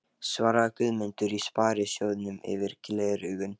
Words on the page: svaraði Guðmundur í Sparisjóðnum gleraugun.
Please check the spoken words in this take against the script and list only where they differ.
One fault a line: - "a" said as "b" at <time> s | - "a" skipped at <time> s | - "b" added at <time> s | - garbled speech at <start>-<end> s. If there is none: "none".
- "yfir" added at 2.5 s